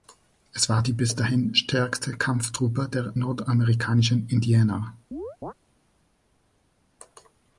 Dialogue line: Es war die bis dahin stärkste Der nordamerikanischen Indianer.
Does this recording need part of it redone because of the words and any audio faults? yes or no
yes